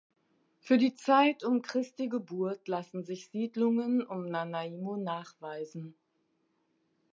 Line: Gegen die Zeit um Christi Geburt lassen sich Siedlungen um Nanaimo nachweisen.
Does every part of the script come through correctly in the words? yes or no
no